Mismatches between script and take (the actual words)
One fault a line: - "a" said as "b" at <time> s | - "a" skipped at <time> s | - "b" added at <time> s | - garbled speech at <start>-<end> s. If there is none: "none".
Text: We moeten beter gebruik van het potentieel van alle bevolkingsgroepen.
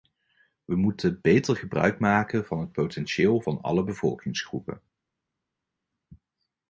- "maken" added at 2.0 s